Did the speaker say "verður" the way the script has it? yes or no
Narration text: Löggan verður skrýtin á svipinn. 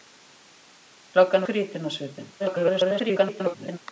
no